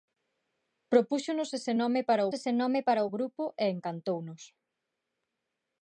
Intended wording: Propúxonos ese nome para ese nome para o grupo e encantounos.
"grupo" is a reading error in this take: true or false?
false